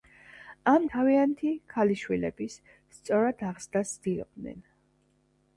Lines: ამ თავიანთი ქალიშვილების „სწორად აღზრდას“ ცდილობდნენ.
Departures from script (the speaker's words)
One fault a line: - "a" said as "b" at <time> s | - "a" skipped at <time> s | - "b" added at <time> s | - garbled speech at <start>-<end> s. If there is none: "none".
none